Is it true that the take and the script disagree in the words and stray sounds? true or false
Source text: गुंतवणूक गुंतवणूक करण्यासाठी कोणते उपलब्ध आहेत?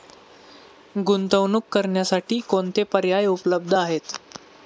true